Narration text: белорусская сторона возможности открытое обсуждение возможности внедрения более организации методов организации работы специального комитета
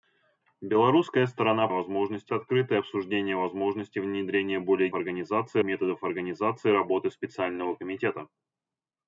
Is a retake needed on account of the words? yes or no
no